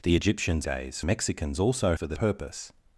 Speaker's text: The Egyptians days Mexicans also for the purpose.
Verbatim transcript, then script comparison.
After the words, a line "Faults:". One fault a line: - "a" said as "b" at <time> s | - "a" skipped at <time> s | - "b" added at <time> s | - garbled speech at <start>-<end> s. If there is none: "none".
The Egyptians days Mexicans also for the purpose.
Faults:
none